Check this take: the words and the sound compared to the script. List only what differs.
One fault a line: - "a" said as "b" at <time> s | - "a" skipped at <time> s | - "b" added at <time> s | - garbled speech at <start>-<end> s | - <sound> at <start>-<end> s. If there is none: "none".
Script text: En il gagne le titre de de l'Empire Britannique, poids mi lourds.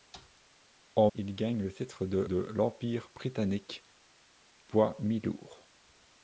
none